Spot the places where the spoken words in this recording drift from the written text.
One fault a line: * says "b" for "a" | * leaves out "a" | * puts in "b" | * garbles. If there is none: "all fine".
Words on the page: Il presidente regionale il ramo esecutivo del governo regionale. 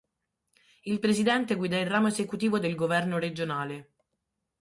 * says "guida" for "regionale"